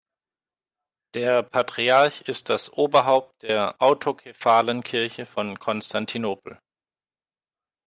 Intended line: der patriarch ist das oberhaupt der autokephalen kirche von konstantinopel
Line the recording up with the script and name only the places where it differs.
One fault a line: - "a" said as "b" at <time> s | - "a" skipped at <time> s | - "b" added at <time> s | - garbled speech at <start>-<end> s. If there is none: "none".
none